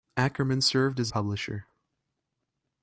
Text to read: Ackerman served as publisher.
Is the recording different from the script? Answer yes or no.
no